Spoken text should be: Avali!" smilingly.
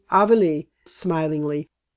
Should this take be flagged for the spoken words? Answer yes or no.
no